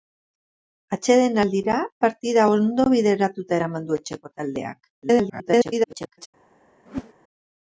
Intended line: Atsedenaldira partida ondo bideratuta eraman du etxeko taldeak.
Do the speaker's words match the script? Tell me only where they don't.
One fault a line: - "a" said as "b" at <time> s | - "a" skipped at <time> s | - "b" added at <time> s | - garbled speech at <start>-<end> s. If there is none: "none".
- garbled speech at 5.0-6.3 s